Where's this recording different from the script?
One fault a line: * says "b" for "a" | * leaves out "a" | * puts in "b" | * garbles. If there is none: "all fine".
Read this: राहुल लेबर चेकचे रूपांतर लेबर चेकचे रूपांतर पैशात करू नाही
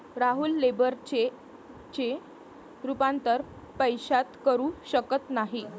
* leaves out "लेबर चेकचे रूपांतर"
* puts in "शकत"